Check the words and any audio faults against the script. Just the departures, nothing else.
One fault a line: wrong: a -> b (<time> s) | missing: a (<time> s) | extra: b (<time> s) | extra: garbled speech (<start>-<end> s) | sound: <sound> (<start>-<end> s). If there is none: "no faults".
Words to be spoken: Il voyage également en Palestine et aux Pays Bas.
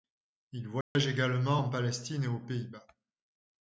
sound: dropout (0.8-1.0 s)